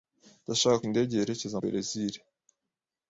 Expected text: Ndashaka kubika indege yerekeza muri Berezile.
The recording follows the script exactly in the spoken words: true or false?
false